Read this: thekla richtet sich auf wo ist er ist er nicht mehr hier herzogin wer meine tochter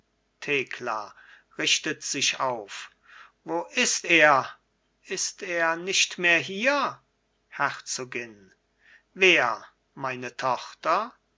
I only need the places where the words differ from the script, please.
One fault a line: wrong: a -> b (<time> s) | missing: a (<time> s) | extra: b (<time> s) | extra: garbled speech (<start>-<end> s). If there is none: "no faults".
no faults